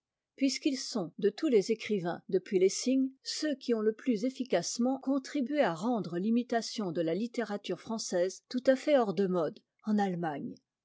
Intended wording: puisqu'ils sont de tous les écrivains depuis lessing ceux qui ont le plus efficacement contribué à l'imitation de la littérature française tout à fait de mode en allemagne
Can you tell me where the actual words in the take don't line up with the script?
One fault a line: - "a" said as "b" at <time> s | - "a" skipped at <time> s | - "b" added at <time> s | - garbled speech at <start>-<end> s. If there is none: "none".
- "rendre" added at 5.7 s
- "hors" added at 9.0 s